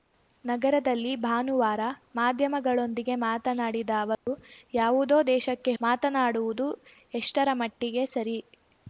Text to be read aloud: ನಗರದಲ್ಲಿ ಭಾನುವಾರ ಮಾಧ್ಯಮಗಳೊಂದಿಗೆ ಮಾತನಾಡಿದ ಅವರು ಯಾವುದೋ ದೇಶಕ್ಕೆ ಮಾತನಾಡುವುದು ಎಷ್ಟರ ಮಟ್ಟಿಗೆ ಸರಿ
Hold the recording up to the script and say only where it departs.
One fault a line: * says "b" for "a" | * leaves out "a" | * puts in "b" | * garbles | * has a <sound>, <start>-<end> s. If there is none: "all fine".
* has a dropout, 4.1-4.3 s